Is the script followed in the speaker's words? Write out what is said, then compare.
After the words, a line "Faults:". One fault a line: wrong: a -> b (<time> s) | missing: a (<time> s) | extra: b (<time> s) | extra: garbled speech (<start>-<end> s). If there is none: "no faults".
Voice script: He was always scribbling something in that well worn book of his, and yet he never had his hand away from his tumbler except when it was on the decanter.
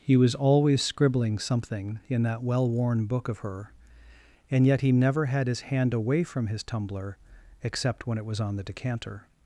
He was always scribbling something in that well worn book of her, and yet he never had his hand away from his tumbler except when it was on the decanter.
Faults:
wrong: his -> her (3.4 s)